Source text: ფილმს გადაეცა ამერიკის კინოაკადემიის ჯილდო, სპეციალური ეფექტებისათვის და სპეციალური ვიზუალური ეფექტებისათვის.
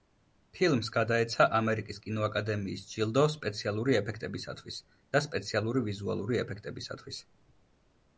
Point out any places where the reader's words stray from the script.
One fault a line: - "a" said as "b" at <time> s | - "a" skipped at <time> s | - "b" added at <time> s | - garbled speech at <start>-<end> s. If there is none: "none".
none